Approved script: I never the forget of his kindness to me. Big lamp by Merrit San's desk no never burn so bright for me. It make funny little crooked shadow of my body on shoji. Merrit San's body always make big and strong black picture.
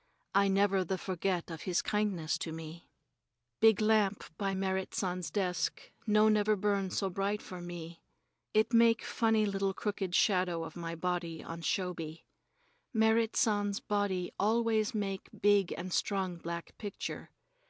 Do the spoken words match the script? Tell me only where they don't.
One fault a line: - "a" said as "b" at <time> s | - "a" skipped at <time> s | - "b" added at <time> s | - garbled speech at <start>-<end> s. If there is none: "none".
none